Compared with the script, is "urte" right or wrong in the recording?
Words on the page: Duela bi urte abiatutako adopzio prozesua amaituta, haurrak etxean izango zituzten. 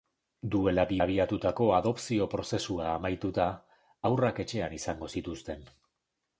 wrong